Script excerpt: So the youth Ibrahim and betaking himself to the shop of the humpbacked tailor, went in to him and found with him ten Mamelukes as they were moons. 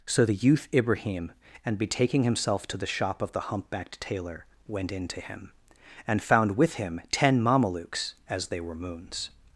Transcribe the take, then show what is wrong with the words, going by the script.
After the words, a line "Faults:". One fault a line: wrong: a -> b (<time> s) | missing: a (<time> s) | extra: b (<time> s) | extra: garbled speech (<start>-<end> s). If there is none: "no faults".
So the youth Ibrahim and betaking himself to the shop of the humpbacked tailor, went in to him and found with him ten Mamelukes as they were moons.
Faults:
no faults